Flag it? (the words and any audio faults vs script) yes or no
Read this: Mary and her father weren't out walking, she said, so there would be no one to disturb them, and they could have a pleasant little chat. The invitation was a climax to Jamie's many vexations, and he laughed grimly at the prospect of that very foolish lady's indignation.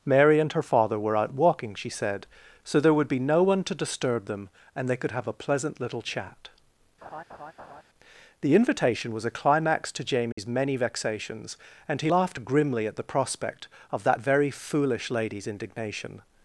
yes